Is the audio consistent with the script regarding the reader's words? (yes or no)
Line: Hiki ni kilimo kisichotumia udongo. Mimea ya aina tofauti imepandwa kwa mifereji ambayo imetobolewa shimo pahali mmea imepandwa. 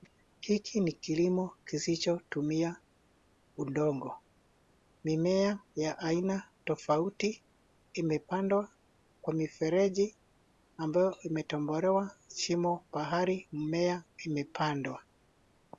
yes